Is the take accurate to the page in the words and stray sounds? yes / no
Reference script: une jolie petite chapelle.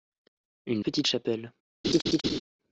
no